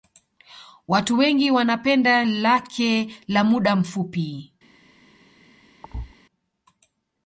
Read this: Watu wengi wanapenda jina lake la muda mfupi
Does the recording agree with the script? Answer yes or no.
no